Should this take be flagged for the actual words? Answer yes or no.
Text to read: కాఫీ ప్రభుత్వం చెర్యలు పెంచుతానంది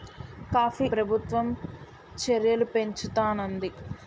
no